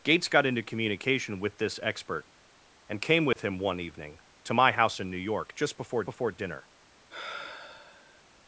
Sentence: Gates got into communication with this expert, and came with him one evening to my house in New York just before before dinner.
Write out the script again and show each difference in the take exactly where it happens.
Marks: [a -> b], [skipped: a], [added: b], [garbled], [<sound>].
Gates got into communication with this expert, and came with [dropout] him one evening to my house in New York just before before dinner. [sigh]